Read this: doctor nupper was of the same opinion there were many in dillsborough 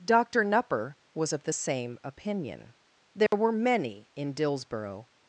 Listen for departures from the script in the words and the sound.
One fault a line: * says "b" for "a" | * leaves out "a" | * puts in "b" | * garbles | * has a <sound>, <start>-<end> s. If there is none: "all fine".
* has a dropout, 3.3-3.3 s